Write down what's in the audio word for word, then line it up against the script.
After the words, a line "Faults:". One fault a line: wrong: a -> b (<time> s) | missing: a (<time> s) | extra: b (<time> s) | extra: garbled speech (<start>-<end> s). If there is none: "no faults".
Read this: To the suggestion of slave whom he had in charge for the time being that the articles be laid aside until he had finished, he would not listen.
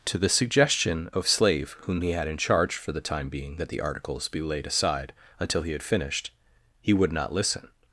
To the suggestion of slave whom he had in charge for the time being that the articles be laid aside until he had finished, he would not listen.
Faults:
no faults